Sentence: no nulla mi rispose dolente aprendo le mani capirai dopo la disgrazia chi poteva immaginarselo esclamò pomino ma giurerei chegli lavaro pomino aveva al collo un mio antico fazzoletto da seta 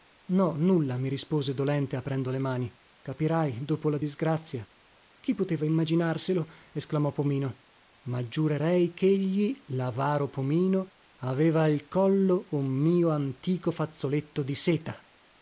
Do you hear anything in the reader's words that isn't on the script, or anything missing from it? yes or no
yes